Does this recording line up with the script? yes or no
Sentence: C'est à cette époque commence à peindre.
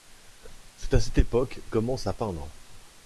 yes